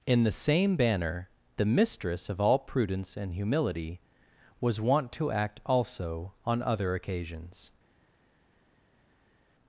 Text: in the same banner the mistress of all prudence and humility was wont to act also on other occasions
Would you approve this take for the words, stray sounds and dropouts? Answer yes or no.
yes